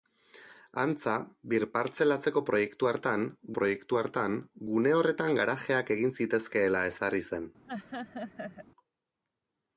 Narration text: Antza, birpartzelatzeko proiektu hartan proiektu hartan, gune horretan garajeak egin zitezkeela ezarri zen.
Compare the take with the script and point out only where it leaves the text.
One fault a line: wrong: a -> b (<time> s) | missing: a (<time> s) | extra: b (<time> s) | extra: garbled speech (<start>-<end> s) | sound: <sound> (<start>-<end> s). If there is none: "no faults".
sound: laugh (7.7-8.7 s)